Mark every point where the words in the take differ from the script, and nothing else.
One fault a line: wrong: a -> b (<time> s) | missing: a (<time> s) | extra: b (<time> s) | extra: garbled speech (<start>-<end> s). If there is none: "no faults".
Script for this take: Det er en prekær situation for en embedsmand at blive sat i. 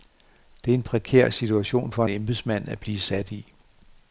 missing: en (2.0 s)